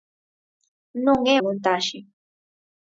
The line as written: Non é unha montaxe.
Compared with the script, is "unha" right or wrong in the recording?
wrong